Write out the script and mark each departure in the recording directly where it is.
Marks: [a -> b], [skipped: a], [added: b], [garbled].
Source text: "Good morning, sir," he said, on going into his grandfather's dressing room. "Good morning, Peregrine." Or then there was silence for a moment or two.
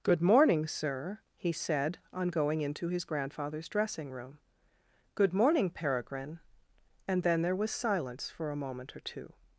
"Good morning, sir," he said, on going into his grandfather's dressing room. "Good morning, Peregrine." [Or -> And] then there was silence for a moment or two.